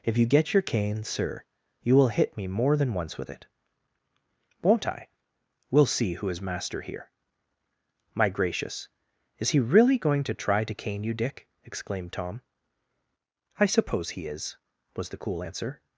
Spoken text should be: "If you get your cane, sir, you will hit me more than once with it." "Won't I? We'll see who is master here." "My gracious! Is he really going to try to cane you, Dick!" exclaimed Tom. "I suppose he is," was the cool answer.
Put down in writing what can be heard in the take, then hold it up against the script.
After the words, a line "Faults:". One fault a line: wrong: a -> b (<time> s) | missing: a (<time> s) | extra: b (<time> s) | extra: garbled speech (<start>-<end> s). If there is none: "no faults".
"If you get your cane, sir, you will hit me more than once with it." "Won't I? We'll see who is master here." "My gracious! Is he really going to try to cane you, Dick!" exclaimed Tom. "I suppose he is," was the cool answer.
Faults:
no faults